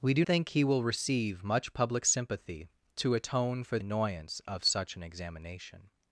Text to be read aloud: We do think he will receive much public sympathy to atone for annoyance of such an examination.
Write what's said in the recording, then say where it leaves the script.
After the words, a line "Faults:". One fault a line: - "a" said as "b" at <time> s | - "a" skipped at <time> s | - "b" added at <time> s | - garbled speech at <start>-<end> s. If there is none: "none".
We do think he will receive much public sympathy to atone for annoyance of such an examination.
Faults:
none